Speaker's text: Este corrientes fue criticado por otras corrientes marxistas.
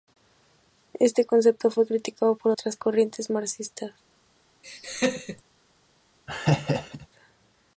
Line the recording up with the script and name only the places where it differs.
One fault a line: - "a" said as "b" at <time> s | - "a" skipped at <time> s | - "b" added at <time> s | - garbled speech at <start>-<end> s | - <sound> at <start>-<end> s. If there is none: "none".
- "corrientes" said as "concepto" at 1.2 s
- laugh at 4.6-5.4 s
- laugh at 6.3-7.1 s